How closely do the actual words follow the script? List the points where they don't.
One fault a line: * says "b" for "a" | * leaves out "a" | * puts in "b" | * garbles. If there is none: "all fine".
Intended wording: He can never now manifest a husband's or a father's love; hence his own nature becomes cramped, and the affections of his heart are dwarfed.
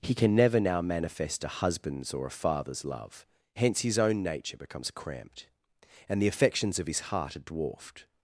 all fine